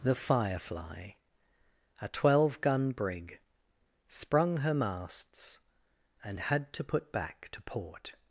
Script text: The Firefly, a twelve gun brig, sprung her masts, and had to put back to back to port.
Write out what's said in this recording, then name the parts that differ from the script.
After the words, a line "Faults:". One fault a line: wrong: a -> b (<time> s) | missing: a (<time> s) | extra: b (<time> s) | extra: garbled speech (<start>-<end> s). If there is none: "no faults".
The Firefly, a twelve gun brig, sprung her masts, and had to put back to port.
Faults:
missing: back to (7.6 s)